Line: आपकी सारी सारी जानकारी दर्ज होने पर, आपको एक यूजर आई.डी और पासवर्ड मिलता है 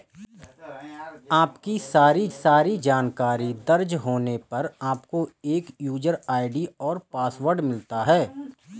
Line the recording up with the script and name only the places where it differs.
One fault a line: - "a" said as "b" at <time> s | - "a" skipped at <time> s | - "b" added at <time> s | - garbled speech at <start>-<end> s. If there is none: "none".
none